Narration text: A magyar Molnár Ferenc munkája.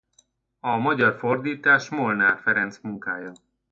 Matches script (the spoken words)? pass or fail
fail